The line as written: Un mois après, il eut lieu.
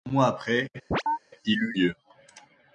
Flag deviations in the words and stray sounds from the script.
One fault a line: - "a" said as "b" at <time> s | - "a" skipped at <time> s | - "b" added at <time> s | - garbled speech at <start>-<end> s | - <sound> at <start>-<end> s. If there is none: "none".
- chirp at 0.9-1.2 s